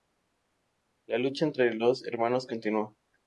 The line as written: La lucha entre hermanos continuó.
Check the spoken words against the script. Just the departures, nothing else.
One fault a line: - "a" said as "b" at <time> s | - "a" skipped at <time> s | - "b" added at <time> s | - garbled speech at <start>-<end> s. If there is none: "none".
- "los" added at 1.8 s